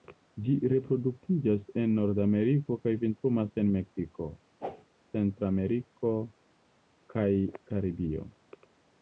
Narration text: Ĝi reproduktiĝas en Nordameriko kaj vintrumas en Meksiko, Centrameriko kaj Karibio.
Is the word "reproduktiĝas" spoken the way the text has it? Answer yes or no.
yes